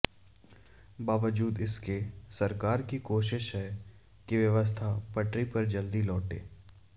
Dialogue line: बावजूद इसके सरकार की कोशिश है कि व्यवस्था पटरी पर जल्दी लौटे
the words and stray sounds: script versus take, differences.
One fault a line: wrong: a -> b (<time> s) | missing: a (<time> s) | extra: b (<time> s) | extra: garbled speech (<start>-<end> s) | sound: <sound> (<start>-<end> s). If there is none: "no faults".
no faults